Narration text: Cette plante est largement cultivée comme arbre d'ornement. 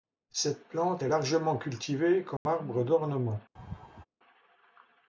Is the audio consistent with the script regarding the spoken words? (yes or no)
yes